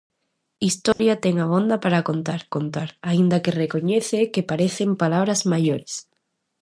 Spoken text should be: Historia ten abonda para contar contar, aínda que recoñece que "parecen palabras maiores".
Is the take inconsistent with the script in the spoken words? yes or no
no